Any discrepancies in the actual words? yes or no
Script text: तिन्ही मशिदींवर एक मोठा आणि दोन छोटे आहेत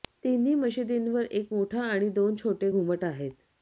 yes